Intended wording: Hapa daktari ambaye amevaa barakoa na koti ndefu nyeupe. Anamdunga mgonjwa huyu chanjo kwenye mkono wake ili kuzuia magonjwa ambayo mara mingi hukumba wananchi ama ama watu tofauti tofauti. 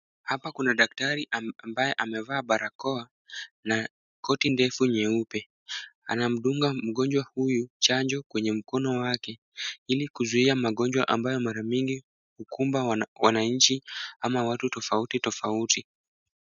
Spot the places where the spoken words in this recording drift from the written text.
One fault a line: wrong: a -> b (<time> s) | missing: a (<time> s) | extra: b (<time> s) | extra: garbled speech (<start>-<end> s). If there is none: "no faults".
extra: kuna (0.5 s)
missing: ama (14.4 s)